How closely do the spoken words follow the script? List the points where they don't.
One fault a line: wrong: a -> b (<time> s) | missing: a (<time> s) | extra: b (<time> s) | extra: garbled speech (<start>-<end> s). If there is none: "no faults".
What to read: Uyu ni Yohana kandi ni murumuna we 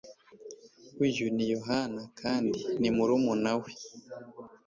no faults